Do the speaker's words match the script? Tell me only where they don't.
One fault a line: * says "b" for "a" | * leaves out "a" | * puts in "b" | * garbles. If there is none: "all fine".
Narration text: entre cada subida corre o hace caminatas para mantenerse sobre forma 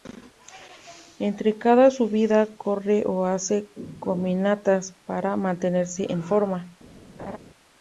* says "en" for "sobre"